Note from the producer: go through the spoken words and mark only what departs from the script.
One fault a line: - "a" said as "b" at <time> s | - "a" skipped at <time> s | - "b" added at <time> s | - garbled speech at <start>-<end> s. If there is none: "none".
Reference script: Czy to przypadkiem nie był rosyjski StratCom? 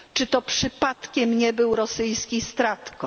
none